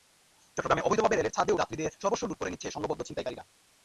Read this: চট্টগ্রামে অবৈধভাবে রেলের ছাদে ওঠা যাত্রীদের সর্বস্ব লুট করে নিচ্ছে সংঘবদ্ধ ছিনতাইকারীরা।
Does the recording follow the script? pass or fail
fail